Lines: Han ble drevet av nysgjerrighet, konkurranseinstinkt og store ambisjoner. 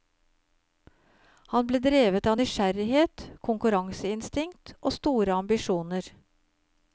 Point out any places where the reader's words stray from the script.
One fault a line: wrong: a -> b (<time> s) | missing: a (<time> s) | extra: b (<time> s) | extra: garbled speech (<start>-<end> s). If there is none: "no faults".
no faults